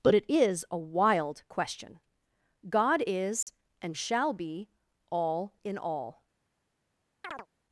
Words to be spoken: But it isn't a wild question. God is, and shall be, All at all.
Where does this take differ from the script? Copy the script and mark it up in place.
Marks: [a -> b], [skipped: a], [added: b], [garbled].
But it [isn't -> is] a wild question. God is, and shall be, All [at -> in] all.